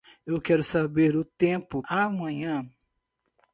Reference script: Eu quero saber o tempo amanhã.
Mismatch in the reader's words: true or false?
false